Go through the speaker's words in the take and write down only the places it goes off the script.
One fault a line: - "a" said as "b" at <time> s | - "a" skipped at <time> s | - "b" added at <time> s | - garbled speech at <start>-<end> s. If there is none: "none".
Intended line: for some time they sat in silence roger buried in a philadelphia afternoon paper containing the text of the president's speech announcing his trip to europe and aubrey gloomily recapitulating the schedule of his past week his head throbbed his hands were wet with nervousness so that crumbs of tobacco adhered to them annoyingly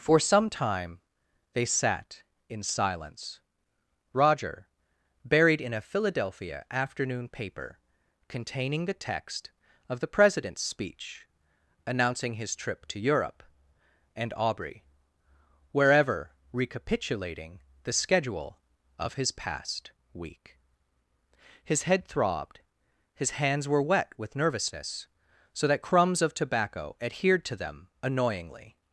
- "gloomily" said as "wherever" at 15.7 s